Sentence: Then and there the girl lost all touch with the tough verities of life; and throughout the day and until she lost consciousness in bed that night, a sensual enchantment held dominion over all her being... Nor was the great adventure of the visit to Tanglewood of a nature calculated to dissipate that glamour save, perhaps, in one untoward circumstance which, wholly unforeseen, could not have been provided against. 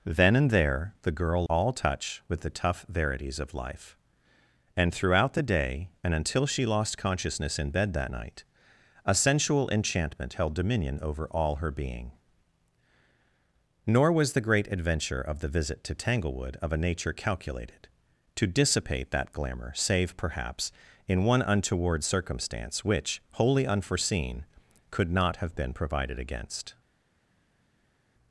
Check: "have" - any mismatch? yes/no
no